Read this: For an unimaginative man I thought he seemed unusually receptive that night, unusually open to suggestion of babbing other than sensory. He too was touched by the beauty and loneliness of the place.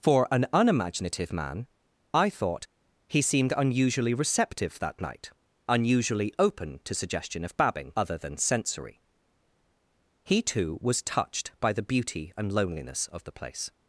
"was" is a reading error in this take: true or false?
false